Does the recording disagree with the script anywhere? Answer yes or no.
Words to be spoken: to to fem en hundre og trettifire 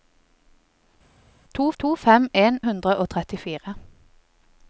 no